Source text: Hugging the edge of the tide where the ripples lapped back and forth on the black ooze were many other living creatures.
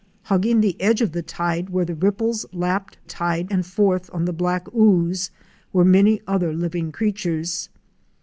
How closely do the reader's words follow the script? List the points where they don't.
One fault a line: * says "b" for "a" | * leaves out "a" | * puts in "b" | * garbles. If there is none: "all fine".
* says "tide" for "back"